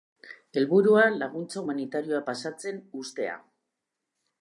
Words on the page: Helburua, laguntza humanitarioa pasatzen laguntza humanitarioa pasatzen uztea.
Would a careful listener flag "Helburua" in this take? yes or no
no